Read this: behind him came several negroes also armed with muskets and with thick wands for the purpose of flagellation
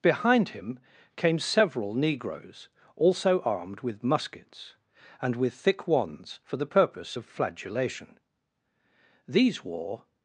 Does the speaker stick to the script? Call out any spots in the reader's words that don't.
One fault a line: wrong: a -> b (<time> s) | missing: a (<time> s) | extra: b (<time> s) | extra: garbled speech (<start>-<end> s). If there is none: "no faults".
extra: these wore (9.3 s)